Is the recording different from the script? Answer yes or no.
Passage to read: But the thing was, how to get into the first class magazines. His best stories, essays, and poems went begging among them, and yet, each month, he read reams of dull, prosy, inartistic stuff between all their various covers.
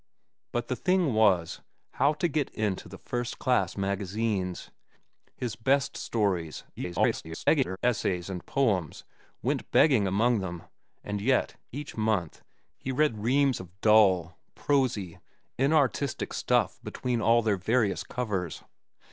yes